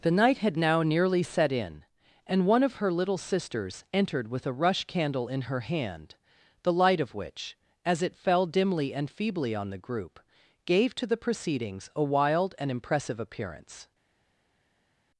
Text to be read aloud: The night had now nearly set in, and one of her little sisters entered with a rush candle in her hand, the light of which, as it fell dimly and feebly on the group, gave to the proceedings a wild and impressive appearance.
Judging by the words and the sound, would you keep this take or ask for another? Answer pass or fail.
pass